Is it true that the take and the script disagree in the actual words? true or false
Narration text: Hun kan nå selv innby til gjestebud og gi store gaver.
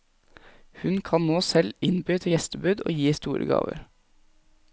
false